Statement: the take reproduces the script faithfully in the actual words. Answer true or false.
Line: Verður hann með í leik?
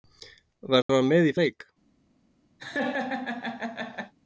true